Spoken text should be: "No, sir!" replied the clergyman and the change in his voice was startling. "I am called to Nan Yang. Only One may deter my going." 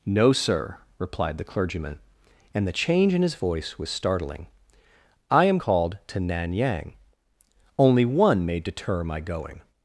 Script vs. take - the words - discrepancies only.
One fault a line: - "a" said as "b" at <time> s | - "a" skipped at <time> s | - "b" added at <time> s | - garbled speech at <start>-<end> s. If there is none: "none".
none